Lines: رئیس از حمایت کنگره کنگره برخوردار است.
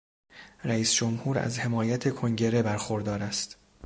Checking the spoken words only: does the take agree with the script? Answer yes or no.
no